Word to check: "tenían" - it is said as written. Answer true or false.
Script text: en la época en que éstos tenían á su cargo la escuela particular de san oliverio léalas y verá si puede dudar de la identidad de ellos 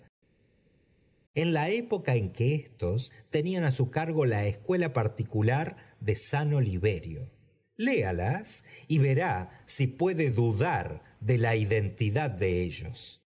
true